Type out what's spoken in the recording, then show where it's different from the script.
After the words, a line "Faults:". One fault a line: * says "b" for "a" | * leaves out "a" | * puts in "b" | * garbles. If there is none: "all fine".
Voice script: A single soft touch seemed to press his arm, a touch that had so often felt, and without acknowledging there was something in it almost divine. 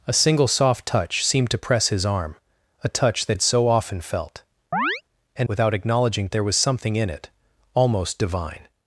A single soft touch seemed to press his arm, a touch that had so often felt, and without acknowledging there was something in it almost divine.
Faults:
all fine